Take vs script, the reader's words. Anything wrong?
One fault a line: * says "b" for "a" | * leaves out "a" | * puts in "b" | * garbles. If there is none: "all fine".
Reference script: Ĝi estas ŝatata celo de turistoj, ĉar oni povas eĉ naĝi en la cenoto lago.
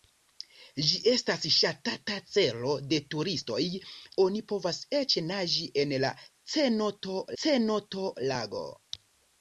* leaves out "ĉar"
* puts in "cenoto"